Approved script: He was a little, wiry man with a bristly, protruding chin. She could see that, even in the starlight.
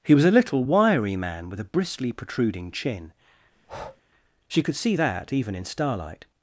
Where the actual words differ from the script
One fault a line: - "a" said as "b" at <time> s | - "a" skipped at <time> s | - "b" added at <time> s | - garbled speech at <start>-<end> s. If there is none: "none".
- "the" skipped at 5.6 s